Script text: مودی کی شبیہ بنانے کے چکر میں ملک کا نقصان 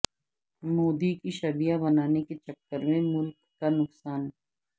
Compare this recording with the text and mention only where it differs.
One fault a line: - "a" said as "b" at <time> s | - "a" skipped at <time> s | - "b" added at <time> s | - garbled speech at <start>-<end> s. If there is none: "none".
none